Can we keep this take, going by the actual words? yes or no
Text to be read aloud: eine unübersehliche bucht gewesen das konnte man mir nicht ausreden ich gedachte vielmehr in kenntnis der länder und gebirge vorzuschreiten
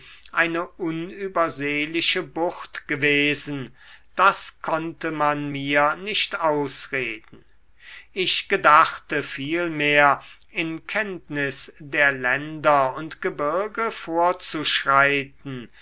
yes